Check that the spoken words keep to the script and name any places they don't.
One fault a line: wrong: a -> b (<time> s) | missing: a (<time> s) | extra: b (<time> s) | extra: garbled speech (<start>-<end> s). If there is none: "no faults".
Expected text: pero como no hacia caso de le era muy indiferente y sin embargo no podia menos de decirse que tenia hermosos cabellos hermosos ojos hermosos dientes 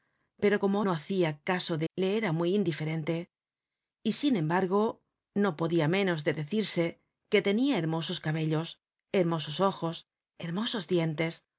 no faults